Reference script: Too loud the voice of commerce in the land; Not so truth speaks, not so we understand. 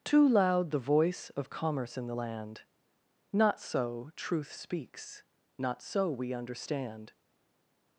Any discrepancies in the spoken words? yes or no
no